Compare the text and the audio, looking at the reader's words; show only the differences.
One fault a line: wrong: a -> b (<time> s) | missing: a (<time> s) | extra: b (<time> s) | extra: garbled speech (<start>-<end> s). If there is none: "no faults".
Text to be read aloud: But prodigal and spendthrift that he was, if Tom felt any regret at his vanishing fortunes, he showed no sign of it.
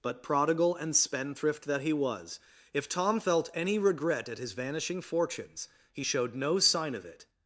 no faults